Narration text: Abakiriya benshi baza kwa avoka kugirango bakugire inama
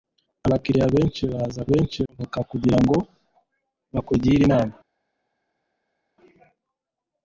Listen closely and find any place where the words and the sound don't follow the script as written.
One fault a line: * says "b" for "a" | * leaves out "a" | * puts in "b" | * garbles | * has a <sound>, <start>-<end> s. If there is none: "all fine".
* says "benshi" for "kwa"